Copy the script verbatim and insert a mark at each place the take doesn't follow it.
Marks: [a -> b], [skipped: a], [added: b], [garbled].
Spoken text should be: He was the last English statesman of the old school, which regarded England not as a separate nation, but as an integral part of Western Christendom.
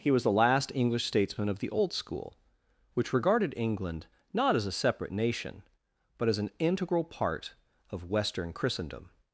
He was the last English statesman of the old school, which regarded England not as a separate nation, but as an integral part of Western Christendom.